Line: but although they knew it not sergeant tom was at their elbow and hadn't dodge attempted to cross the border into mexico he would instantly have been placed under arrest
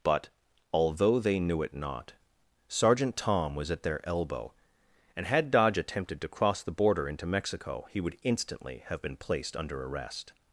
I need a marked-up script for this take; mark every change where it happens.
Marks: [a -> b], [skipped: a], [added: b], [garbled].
but although they knew it not sergeant tom was at their elbow and [hadn't -> had] dodge attempted to cross the border into mexico he would instantly have been placed under arrest